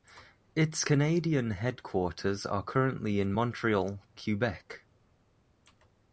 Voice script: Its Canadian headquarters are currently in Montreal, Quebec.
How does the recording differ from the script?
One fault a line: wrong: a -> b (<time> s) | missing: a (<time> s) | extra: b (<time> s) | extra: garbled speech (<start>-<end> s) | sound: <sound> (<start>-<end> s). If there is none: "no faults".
no faults